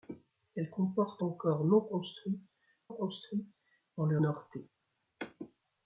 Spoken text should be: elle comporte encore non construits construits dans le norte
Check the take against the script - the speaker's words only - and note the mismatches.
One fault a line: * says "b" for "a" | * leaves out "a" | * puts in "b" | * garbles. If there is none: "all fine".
all fine